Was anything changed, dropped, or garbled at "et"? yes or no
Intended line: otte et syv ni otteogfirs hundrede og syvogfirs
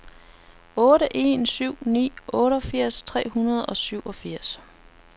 yes